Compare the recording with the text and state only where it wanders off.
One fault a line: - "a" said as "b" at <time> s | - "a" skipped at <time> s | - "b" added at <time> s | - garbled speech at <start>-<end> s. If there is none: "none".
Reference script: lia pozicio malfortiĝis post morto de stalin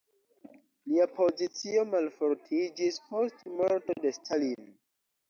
none